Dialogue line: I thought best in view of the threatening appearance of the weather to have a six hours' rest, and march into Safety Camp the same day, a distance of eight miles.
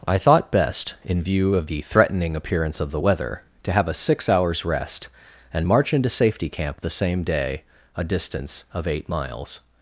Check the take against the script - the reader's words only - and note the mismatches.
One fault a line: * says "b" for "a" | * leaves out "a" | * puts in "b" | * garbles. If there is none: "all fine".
all fine